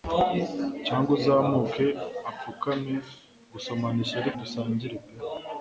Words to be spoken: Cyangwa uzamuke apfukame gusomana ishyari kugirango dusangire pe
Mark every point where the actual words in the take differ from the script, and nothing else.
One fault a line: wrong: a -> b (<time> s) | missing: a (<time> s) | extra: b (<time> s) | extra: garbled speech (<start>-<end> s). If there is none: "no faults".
missing: kugirango (4.3 s)